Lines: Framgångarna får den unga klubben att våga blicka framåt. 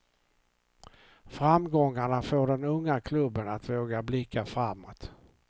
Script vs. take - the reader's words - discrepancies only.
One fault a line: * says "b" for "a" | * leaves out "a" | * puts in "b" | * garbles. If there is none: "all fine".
all fine